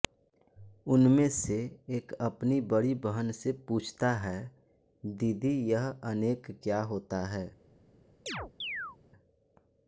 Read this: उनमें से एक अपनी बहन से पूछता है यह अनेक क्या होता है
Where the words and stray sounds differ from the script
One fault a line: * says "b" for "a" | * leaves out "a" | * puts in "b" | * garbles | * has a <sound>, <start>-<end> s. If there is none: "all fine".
* puts in "बड़ी"
* puts in "दीदी"
* has a chirp, 8.3-9.0 s